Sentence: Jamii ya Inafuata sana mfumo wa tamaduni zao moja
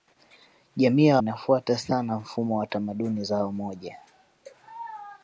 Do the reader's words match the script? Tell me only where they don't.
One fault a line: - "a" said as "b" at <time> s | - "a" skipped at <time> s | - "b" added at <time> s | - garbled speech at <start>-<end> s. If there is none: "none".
none